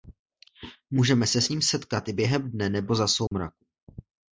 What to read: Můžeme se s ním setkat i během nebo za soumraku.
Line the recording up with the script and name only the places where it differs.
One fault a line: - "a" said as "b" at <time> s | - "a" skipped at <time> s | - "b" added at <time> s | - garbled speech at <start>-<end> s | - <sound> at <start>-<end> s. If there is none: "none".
- "dne" added at 2.5 s
- dropout at 3.3-3.3 s